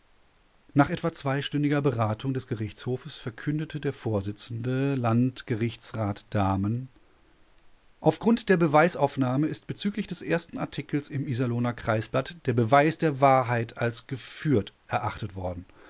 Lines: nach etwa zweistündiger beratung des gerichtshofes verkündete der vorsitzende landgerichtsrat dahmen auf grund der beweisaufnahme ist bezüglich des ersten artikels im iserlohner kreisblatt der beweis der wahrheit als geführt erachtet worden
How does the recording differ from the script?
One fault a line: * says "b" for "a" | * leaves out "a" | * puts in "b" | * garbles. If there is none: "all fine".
all fine